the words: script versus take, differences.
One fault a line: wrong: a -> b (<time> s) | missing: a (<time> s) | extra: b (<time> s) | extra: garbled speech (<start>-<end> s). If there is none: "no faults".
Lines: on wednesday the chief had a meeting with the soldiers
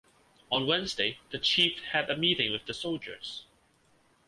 no faults